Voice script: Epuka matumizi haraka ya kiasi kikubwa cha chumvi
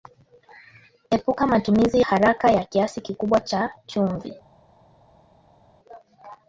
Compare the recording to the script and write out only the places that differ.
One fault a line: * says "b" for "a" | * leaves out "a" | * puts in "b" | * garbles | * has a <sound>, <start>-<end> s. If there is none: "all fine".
all fine